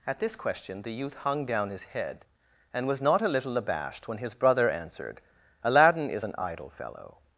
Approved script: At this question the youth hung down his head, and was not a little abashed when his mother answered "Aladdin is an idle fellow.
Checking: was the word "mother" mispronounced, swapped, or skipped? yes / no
yes